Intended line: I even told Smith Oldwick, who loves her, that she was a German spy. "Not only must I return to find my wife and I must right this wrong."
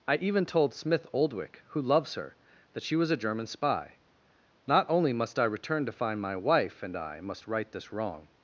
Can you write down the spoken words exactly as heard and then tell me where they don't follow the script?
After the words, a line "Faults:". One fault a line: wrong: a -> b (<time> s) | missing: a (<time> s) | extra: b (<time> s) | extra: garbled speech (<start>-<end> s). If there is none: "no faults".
I even told Smith Oldwick, who loves her, that she was a German spy. "Not only must I return to find my wife and I must right this wrong."
Faults:
no faults